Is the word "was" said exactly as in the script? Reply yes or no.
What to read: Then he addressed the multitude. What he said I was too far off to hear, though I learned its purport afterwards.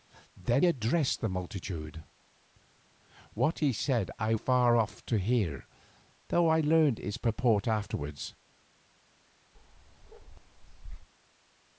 no